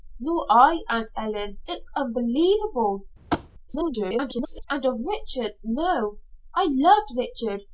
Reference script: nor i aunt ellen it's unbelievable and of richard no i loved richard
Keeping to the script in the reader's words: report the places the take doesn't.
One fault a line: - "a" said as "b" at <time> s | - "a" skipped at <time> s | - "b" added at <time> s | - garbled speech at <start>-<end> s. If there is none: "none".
- garbled speech at 3.7-4.7 s